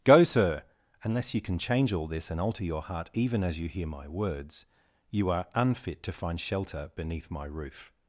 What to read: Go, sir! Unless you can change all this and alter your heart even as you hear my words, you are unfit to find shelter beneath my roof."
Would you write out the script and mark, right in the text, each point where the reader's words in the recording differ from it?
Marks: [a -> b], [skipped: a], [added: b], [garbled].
Go, sir! Unless you can change all this and alter your heart even as you hear my words, you are unfit to find shelter beneath my roof."